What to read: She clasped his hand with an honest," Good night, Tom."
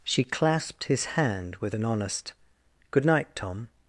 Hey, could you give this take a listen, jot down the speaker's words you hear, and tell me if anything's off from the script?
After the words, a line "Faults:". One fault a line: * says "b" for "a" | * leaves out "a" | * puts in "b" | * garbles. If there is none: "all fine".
She clasped his hand with an honest," Good night, Tom."
Faults:
all fine